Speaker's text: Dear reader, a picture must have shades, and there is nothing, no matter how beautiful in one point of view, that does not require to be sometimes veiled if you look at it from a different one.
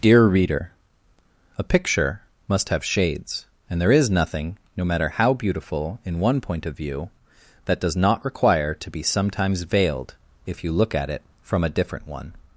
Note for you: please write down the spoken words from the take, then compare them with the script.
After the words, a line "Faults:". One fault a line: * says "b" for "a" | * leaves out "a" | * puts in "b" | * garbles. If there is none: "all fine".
Dear reader, a picture must have shades, and there is nothing, no matter how beautiful in one point of view, that does not require to be sometimes veiled if you look at it from a different one.
Faults:
all fine